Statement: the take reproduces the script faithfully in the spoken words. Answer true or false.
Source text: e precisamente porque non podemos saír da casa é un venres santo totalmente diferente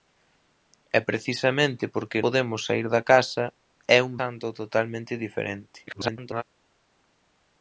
false